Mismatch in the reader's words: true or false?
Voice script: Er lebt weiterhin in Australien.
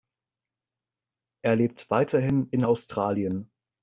false